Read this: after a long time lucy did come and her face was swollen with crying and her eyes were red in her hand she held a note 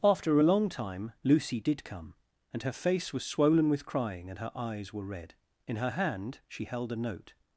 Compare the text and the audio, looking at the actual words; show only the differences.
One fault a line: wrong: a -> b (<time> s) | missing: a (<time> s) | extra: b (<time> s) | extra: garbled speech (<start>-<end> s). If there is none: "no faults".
no faults